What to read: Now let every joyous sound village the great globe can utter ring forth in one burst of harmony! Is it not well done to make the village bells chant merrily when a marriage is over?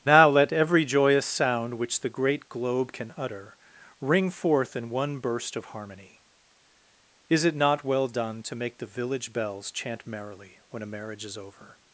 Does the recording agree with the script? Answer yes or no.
no